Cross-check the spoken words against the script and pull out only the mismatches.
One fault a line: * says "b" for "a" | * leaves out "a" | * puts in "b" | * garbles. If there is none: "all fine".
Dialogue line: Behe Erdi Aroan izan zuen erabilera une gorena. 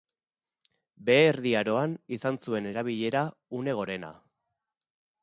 all fine